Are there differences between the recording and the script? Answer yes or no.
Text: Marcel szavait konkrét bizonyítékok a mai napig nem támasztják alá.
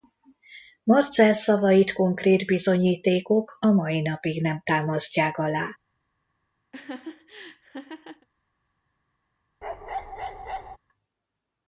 no